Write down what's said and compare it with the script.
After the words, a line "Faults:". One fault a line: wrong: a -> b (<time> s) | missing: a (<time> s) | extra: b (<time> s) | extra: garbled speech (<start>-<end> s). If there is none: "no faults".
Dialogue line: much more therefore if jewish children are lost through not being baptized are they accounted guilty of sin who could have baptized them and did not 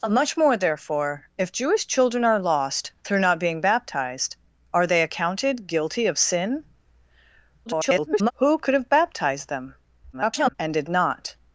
much more therefore if jewish children are lost through not being baptized are they accounted guilty of sin [garbled] who could have baptized them [garbled] and did not
Faults:
extra: garbled speech (7.7-8.3 s)
extra: garbled speech (10.1-10.5 s)